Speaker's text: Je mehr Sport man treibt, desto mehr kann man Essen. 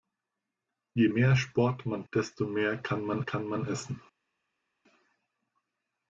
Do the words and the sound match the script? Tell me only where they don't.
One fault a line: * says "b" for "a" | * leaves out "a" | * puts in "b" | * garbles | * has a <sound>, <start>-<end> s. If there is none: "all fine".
* leaves out "treibt"
* puts in "kann man"